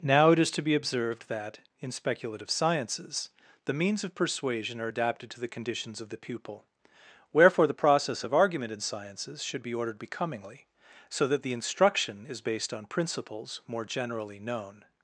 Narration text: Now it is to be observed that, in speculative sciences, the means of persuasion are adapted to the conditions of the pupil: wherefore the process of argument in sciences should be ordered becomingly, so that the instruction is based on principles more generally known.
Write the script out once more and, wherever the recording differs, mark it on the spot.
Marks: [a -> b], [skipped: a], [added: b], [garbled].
Now it is to be observed that, in speculative sciences, the means of persuasion are adapted to the conditions of the pupil: wherefore the process of argument in sciences should be ordered becomingly, so that the instruction is based on principles more generally known.